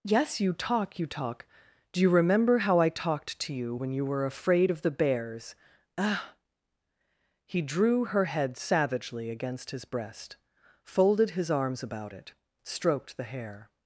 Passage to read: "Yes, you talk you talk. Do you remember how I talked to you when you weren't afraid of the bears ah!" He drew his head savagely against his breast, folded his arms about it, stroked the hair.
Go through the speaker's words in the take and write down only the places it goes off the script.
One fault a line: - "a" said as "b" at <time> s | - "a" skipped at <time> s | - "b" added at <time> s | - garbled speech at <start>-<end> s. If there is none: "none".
- "weren't" said as "were" at 4.0 s
- "his" said as "her" at 8.0 s